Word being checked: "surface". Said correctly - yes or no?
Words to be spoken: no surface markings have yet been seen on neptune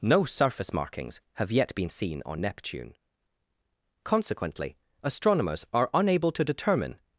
yes